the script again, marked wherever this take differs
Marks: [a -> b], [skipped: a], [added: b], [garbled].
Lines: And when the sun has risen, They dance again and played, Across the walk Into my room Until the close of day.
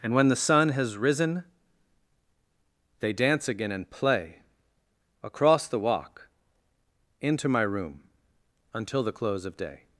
And when the sun has risen, They dance again and [played, -> play] Across the walk Into my room Until the close of day.